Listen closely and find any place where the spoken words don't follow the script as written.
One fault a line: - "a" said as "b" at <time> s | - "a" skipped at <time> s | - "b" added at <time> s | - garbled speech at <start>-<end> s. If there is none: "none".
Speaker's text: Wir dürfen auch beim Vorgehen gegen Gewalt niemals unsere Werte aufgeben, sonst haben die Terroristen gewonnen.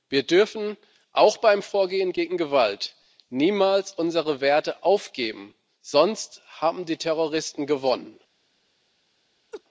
none